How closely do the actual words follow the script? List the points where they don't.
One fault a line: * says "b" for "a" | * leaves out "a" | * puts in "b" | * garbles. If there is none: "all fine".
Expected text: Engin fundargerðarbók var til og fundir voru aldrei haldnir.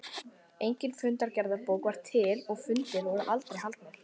all fine